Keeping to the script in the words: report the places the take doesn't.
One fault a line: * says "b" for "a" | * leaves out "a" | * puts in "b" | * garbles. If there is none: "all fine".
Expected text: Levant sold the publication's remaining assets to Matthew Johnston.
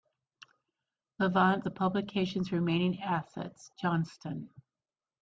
* leaves out "sold"
* leaves out "to Matthew"